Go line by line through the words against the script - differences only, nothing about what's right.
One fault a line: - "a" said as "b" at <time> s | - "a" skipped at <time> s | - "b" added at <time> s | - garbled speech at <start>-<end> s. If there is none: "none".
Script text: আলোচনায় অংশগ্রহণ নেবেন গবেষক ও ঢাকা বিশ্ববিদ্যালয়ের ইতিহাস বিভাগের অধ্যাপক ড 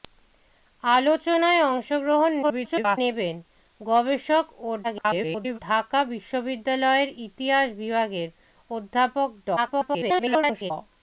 - garbled speech at 2.4-3.0 s
- garbled speech at 4.8-5.6 s
- garbled speech at 9.6-10.7 s